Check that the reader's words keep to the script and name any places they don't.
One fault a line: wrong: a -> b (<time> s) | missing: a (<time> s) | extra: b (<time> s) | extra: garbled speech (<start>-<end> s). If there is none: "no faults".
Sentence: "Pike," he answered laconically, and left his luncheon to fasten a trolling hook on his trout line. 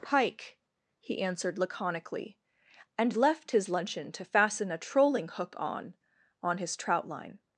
extra: on (6.4 s)